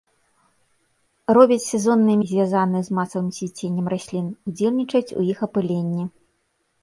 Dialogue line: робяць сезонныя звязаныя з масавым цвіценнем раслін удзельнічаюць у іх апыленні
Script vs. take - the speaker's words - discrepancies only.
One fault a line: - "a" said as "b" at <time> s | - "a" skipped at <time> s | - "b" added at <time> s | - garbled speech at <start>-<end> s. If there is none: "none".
none